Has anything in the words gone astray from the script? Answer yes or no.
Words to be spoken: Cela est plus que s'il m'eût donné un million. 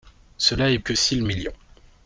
yes